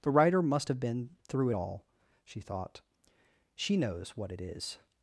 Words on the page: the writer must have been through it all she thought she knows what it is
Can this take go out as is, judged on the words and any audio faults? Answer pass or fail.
pass